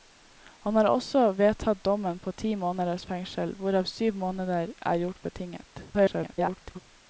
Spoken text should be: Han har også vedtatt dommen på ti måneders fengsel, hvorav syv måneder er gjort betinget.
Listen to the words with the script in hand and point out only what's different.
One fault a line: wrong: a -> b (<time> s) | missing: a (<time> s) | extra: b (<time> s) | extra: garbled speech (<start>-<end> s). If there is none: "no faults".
extra: garbled speech (5.9-6.8 s)